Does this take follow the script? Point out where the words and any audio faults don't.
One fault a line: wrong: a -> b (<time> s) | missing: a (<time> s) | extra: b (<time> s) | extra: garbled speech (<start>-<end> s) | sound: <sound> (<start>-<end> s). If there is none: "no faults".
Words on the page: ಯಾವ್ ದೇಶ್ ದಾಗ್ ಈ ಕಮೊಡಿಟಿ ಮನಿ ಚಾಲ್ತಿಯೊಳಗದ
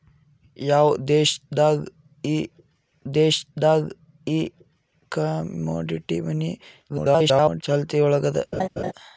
extra: ದೇಶ್ ದಾಗ್ ಈ (3.1 s)
extra: garbled speech (6.9-7.6 s)
sound: laugh (8.5-8.9 s)